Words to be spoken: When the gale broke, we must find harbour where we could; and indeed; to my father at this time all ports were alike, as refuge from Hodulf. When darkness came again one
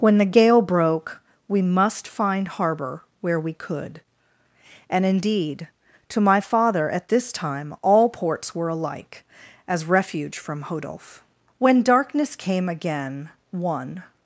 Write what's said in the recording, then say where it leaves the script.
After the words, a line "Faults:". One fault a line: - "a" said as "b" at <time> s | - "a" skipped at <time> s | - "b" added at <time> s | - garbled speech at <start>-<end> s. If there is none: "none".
When the gale broke, we must find harbour where we could; and indeed; to my father at this time all ports were alike, as refuge from Hodulf. When darkness came again one
Faults:
none